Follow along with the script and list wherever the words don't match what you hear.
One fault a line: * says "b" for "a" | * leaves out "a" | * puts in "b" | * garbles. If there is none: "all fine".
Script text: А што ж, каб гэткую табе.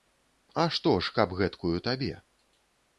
all fine